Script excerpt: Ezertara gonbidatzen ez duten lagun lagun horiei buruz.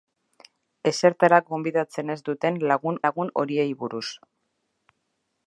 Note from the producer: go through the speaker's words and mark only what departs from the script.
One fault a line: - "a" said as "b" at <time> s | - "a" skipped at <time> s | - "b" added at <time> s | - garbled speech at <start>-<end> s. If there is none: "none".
none